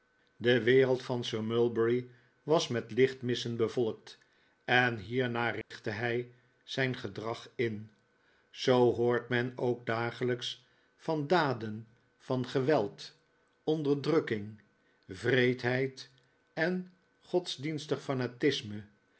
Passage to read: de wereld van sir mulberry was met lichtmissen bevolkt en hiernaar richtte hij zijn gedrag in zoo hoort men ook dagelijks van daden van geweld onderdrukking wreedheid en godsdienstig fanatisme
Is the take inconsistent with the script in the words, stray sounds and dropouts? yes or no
yes